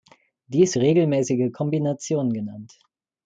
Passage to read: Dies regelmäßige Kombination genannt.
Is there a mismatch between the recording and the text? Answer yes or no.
no